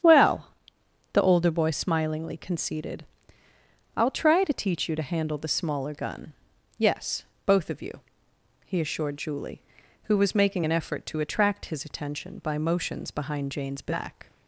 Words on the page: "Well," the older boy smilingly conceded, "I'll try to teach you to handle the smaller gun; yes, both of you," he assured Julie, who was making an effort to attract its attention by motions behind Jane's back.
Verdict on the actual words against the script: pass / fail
fail